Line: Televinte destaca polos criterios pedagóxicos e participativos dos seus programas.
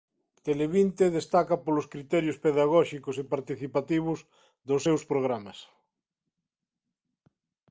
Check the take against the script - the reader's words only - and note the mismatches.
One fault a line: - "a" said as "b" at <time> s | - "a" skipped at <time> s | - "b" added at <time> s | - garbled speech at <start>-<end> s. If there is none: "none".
none